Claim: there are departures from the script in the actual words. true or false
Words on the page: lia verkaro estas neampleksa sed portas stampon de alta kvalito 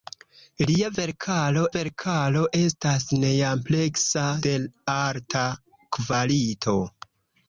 true